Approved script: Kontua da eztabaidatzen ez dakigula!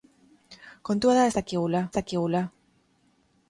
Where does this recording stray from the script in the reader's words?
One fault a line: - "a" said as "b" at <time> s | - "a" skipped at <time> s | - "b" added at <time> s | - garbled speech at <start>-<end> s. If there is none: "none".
- "eztabaidatzen" said as "dakigula" at 1.4 s